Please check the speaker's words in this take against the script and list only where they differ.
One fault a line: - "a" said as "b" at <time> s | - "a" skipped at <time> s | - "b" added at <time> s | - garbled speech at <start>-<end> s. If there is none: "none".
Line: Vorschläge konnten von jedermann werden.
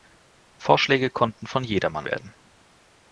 none